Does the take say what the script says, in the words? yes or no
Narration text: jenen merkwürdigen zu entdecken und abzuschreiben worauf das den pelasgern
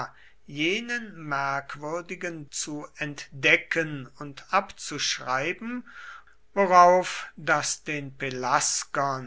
yes